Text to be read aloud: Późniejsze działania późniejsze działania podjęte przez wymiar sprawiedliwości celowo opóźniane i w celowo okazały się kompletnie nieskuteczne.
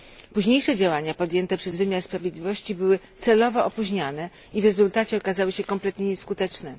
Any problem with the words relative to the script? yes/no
yes